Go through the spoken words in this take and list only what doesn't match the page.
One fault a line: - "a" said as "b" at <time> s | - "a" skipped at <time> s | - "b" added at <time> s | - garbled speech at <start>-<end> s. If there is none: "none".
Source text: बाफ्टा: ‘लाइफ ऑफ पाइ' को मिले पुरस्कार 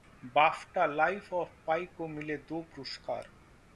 - "दो" added at 2.5 s